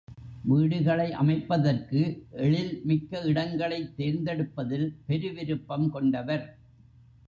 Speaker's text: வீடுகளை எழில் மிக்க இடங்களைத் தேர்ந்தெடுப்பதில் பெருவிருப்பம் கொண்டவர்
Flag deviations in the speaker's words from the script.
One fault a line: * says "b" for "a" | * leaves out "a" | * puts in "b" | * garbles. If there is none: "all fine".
* puts in "அமைப்பதற்கு"